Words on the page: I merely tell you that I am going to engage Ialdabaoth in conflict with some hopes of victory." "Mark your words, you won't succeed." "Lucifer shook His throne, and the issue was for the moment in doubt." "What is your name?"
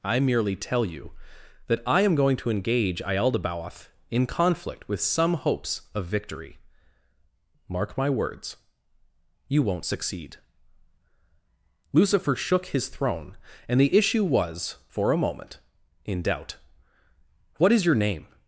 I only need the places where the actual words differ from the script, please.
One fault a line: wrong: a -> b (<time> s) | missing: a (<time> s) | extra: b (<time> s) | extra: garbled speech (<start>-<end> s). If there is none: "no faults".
wrong: your -> my (8.0 s)
wrong: the -> a (15.1 s)